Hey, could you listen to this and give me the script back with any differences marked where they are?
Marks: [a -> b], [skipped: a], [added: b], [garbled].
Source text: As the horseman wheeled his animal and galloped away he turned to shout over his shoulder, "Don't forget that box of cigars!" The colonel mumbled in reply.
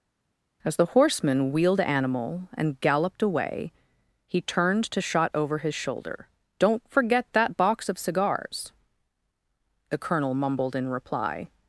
As the horseman wheeled [skipped: his] animal and galloped away he turned to [shout -> shot] over his shoulder, "Don't forget that box of cigars!" The colonel mumbled in reply.